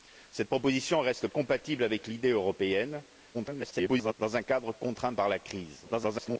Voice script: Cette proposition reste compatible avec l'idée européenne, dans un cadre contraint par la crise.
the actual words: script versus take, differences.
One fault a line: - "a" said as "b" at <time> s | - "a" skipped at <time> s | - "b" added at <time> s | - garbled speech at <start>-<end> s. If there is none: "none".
- garbled speech at 3.3-4.1 s
- garbled speech at 5.8-6.4 s